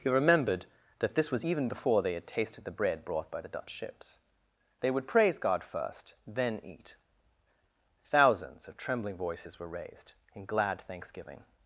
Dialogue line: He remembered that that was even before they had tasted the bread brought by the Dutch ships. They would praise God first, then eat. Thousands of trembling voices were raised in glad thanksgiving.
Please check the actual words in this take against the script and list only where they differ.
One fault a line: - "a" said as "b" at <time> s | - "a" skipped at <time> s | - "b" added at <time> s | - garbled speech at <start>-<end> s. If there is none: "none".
- "that" said as "this" at 1.1 s